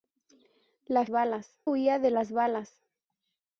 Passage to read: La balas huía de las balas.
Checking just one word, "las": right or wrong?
right